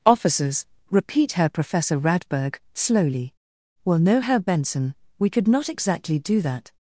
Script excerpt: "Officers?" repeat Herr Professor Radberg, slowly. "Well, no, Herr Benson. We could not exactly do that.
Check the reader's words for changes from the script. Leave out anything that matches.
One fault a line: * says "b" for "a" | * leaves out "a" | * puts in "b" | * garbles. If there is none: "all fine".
all fine